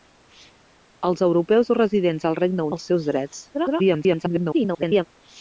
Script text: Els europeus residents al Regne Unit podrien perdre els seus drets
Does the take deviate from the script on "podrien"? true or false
true